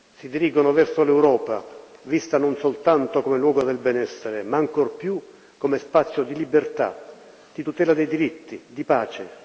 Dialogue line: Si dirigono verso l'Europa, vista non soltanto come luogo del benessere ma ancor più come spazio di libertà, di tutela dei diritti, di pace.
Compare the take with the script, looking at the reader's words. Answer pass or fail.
pass